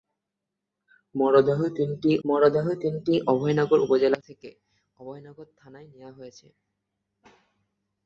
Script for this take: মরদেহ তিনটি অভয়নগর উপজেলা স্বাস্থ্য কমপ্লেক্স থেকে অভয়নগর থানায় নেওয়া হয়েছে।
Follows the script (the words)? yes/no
no